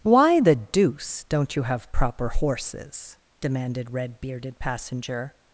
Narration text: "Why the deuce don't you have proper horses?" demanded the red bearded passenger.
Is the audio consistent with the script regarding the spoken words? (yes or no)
no